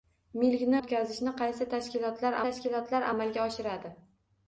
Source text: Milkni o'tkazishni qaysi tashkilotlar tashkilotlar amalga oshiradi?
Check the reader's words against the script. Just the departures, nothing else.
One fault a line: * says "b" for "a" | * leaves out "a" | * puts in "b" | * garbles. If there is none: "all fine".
all fine